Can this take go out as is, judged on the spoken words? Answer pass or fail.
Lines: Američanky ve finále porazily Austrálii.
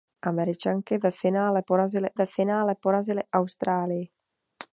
fail